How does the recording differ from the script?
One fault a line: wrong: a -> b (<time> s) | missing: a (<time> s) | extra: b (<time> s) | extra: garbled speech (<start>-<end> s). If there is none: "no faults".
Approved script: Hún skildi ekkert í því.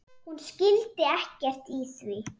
no faults